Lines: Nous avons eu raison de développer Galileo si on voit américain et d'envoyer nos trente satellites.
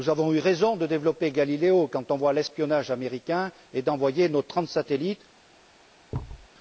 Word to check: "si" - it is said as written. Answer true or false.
false